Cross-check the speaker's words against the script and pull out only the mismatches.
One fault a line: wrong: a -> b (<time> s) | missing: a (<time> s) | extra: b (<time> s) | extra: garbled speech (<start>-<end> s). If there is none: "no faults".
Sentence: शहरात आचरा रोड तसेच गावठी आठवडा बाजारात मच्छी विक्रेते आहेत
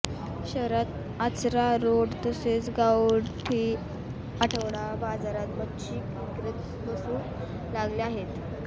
extra: बसू लागले (6.9 s)